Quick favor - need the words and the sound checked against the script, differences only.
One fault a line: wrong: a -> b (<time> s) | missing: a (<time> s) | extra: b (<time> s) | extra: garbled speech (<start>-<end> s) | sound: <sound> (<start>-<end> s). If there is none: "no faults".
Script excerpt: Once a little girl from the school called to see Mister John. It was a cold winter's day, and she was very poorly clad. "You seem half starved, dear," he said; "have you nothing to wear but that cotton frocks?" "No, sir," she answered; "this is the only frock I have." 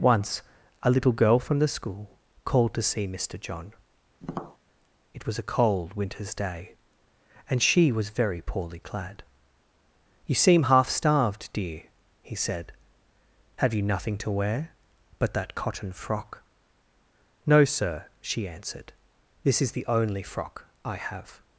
sound: tap (4.2-4.6 s)
wrong: frocks -> frock (15.9 s)